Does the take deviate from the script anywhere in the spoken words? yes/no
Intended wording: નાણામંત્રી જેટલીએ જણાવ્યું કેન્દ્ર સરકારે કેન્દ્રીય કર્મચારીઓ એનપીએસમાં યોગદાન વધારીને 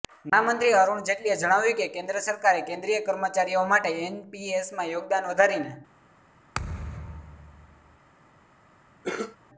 yes